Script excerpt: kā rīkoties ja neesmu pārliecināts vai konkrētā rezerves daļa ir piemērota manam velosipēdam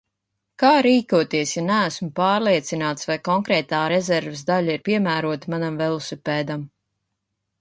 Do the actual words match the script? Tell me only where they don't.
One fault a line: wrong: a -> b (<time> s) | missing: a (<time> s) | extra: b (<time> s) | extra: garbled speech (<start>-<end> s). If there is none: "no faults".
no faults